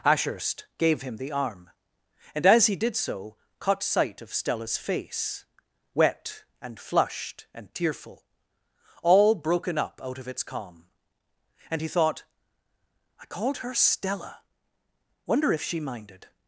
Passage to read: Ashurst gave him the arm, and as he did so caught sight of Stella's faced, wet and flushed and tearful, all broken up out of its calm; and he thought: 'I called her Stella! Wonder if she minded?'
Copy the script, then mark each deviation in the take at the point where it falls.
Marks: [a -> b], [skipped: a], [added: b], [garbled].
Ashurst gave him the arm, and as he did so caught sight of Stella's [faced, -> face] wet and flushed and tearful, all broken up out of its calm; and he thought: 'I called her Stella! Wonder if she minded?'